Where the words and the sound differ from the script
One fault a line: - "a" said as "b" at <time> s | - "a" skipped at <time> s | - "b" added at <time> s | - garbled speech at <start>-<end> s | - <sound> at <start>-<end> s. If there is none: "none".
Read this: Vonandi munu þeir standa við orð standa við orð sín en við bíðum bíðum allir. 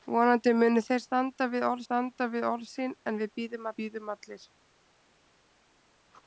none